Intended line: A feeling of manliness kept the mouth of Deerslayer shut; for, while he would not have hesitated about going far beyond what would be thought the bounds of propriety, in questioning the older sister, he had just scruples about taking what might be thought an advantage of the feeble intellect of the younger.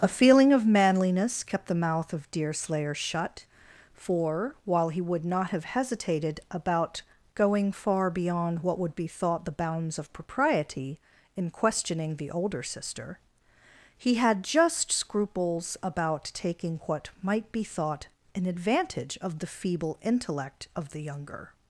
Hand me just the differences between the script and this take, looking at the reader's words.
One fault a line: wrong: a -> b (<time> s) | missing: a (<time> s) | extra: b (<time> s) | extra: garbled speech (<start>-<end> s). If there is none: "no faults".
no faults